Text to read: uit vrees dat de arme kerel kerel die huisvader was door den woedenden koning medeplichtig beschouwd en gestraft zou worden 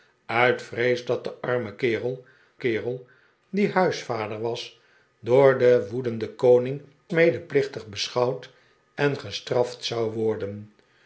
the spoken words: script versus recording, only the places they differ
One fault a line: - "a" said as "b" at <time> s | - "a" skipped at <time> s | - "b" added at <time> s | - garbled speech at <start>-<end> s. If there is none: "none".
none